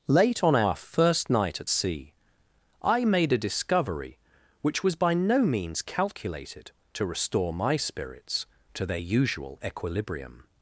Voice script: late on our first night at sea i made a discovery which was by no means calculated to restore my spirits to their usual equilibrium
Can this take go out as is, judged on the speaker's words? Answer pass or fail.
pass